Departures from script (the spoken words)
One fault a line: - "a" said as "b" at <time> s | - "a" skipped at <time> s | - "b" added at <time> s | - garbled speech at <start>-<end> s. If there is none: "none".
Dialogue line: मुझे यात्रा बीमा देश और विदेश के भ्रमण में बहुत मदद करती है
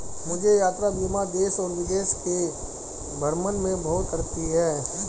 - "मदद" skipped at 4.1 s